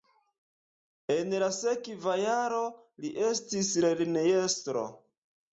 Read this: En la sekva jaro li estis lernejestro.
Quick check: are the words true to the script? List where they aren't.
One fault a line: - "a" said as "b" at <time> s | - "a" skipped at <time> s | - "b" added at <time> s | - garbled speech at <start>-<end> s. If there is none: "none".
none